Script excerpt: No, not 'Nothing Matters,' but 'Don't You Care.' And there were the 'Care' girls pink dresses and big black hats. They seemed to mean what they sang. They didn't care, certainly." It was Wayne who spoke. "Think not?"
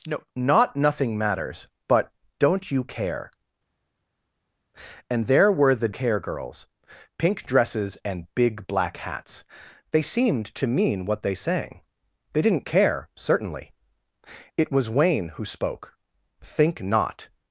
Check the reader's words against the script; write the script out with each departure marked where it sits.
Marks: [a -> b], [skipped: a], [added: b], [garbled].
No, not 'Nothing Matters,' but 'Don't You Care.' And there were the 'Care' girls pink dresses and big black hats. They seemed to mean what they sang. They didn't care, certainly." It was Wayne who spoke. "Think not?"